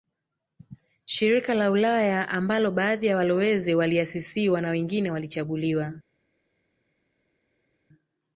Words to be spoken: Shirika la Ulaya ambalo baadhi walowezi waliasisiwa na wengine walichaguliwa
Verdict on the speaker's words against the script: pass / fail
fail